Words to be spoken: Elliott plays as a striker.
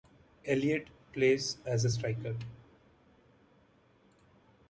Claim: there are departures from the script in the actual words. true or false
false